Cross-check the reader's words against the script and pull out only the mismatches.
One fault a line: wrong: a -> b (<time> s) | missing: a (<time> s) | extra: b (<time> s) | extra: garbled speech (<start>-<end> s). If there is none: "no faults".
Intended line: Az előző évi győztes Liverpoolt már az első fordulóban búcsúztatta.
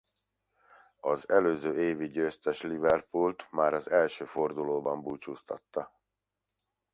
no faults